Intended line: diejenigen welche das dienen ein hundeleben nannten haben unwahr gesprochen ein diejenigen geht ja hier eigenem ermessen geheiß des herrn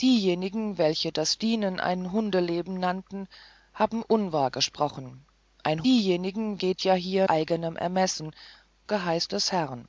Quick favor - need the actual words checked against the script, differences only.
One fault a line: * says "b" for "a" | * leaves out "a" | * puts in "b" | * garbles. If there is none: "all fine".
all fine